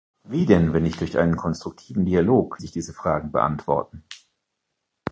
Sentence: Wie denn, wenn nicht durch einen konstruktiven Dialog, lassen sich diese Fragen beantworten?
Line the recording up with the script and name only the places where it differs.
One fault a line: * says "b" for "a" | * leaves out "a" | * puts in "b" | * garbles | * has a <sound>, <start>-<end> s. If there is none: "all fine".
* leaves out "lassen"